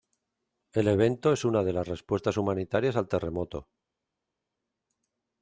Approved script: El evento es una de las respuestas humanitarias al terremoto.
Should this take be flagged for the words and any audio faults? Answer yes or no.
no